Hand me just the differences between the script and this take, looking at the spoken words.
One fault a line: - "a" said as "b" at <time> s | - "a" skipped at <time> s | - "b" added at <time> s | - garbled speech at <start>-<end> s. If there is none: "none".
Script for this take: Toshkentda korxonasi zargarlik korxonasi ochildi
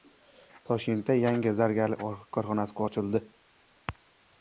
- "korxonasi" said as "yangi" at 1.2 s